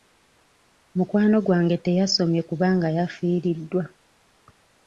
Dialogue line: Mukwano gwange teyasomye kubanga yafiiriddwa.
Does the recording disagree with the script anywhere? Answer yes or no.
no